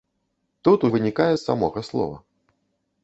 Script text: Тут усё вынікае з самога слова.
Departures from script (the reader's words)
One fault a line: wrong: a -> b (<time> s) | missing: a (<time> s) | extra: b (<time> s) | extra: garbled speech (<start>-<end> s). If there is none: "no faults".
missing: усё (0.8 s)